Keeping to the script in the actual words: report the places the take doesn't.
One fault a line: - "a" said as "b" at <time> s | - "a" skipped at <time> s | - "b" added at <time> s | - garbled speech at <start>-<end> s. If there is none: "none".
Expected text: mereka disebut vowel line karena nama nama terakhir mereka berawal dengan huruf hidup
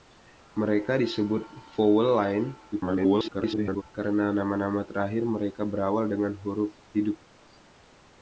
- garbled speech at 2.7-3.8 s